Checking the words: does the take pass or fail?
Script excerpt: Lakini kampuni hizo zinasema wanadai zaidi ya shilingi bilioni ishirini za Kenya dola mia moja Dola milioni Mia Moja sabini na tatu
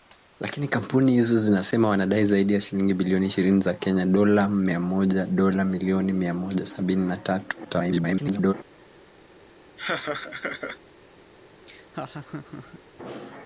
fail